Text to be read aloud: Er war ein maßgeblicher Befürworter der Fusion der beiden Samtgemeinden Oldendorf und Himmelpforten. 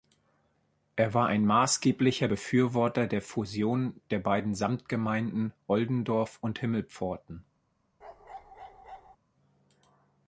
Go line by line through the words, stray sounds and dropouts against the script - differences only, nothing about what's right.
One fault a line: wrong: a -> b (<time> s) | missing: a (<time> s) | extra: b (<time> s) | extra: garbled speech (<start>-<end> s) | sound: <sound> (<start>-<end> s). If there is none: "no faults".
sound: bark (8.0-9.2 s)